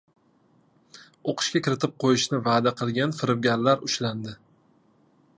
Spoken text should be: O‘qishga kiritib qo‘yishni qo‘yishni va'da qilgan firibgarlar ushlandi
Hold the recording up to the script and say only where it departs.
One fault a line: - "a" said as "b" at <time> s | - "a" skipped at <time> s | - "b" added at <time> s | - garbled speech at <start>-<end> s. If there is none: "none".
- "qo‘yishni" skipped at 2.4 s